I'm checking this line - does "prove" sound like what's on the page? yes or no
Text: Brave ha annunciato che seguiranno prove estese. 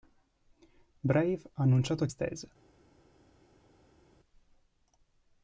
no